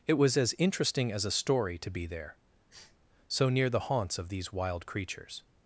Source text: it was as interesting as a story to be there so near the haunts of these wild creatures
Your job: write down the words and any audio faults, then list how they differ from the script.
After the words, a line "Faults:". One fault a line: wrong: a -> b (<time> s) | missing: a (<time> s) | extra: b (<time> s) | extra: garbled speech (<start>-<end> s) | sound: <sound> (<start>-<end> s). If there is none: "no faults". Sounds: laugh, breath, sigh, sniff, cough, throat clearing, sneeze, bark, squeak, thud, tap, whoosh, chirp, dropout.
it was as interesting as a story to be there so near the haunts of these wild creatures
Faults:
sound: sniff (2.7-3.0 s)